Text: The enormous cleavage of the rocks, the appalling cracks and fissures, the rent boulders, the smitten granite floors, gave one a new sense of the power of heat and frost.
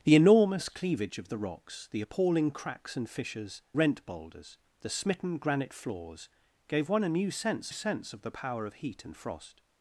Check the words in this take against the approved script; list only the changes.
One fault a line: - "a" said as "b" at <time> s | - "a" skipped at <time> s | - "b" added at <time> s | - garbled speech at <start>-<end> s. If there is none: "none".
- "the" skipped at 3.6 s
- "sense" added at 7.7 s